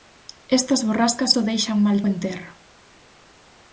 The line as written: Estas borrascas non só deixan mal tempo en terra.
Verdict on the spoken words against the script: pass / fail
fail